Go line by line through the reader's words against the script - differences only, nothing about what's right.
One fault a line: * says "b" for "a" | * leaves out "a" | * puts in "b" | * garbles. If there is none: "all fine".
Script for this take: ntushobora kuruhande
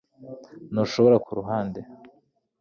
all fine